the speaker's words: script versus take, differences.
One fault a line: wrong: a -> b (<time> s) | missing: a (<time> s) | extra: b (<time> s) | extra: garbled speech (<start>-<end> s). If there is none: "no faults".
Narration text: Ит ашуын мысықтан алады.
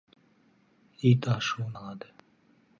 missing: мысықтан (1.7 s)